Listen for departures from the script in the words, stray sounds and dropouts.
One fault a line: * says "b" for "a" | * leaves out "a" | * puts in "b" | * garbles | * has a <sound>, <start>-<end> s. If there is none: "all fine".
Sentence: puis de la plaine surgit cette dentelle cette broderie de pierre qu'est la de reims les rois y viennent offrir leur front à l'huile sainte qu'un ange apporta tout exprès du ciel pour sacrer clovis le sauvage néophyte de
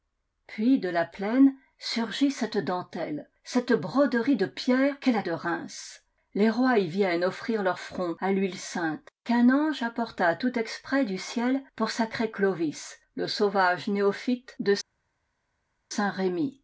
all fine